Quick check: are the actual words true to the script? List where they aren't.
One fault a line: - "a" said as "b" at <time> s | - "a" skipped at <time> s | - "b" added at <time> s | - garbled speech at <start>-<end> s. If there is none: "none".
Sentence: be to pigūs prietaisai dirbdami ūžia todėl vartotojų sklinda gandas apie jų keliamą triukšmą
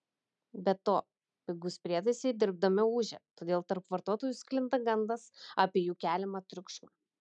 - "tarp" added at 3.7 s